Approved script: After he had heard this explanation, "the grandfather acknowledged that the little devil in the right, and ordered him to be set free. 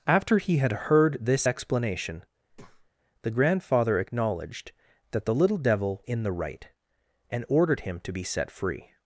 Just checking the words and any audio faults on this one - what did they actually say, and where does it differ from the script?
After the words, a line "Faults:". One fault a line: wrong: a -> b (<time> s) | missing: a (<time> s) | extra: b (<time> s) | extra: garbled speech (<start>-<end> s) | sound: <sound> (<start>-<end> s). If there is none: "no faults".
After he had heard this explanation, "the grandfather acknowledged that the little devil in the right, and ordered him to be set free.
Faults:
sound: breath (2.5-2.9 s)